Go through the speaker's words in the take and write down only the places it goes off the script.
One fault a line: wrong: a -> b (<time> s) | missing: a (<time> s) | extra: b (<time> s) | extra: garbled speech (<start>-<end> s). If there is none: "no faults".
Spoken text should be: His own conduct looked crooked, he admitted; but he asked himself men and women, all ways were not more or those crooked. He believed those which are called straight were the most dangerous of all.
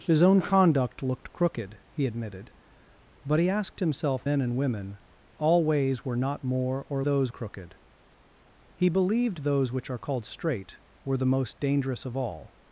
no faults